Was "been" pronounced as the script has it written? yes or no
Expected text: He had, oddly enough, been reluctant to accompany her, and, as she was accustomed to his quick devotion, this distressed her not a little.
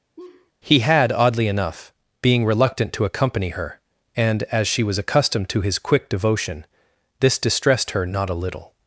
no